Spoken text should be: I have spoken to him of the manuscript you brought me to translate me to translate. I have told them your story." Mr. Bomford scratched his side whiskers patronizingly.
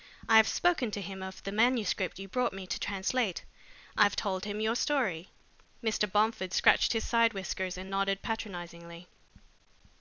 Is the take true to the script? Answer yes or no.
no